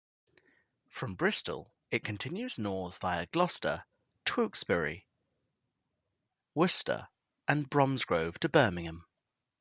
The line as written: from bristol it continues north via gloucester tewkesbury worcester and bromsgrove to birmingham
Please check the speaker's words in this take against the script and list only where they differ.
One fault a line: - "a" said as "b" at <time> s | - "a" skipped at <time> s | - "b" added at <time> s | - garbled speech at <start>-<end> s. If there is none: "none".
none